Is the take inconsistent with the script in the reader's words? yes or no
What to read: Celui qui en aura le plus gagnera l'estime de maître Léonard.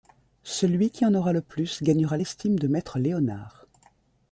no